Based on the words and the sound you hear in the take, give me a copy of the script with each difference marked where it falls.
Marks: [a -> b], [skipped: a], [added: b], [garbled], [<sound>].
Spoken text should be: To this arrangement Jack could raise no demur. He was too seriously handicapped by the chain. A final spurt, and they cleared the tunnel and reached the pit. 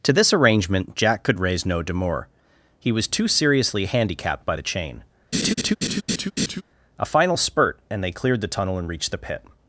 To this arrangement Jack could raise no demur. He was too seriously handicapped by the chain. [laugh] A final spurt, and they cleared the tunnel and reached the pit.